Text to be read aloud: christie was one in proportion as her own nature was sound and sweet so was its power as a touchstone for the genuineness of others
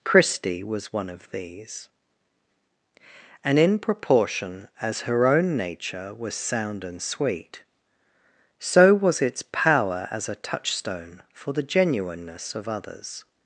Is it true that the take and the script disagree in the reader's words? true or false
true